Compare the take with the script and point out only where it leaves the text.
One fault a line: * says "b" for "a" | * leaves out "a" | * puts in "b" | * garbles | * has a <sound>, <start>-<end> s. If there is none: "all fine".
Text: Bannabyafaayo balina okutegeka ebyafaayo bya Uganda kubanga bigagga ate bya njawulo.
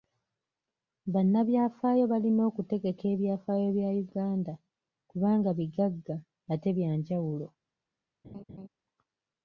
* has a laugh, 8.2-8.7 s